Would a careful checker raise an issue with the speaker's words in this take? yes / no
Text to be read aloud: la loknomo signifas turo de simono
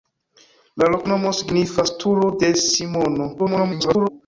yes